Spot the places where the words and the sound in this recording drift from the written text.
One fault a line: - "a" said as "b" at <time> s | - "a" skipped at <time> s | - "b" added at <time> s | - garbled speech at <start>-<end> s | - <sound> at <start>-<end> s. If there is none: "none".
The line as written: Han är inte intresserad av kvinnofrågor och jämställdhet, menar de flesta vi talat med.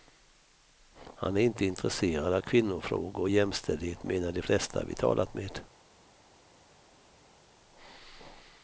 none